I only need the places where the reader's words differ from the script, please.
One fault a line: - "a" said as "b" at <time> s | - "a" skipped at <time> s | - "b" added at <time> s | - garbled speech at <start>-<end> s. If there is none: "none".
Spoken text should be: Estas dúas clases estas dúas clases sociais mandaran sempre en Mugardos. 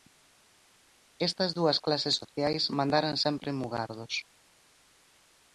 - "estas dúas clases" skipped at 2.1 s